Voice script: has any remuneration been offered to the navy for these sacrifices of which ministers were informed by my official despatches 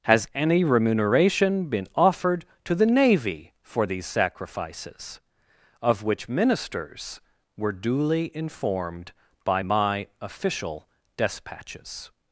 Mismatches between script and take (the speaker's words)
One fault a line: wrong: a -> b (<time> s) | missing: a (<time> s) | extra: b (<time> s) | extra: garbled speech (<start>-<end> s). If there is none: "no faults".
extra: duly (7.7 s)